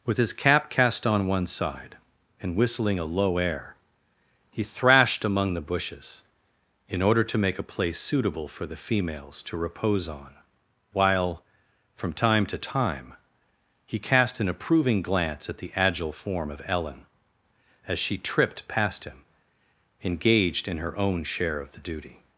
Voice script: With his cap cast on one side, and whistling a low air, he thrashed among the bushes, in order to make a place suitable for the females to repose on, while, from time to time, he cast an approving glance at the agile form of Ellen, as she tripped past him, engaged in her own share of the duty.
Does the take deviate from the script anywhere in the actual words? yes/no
no